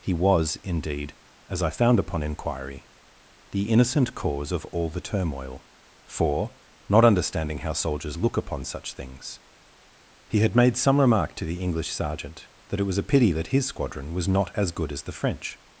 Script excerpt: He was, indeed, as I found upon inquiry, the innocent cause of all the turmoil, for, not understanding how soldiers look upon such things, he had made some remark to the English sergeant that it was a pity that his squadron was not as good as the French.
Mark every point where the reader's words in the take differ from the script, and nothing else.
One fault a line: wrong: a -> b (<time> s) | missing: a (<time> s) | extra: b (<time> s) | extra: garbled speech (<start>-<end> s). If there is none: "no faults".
no faults